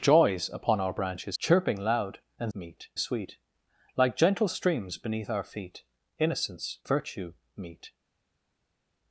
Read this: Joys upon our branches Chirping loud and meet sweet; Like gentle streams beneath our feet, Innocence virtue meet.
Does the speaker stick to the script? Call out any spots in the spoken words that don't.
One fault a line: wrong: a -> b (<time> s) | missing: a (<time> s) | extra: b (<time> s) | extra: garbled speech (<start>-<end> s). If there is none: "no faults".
no faults